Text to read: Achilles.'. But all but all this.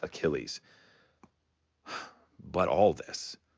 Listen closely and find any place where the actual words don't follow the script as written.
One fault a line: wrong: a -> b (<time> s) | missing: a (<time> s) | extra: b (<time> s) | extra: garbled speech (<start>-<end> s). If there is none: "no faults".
missing: but all (2.9 s)